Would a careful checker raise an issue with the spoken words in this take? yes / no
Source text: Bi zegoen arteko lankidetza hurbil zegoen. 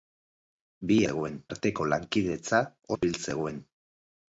no